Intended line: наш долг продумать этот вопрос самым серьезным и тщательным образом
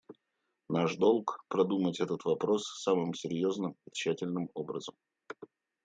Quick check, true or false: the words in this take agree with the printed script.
true